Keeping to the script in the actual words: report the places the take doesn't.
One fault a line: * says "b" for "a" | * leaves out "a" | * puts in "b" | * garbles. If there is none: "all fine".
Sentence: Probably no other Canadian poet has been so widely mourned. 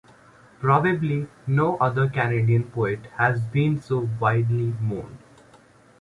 all fine